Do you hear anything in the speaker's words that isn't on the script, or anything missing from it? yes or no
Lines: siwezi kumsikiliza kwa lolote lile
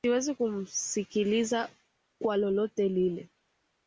no